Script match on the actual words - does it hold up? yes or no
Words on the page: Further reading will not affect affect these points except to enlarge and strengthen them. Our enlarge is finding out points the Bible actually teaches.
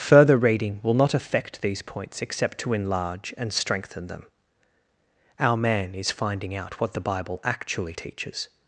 no